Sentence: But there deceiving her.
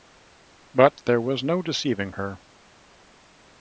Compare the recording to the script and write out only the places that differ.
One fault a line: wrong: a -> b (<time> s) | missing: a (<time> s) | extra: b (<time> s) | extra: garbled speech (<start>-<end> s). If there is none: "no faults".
extra: was no (1.2 s)